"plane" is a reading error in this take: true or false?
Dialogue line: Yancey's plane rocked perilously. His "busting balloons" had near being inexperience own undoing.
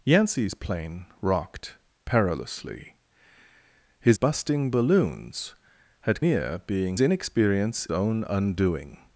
false